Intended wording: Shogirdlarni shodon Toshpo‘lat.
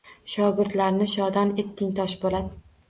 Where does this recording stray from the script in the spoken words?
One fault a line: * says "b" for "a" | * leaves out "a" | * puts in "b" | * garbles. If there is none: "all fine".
* puts in "etding"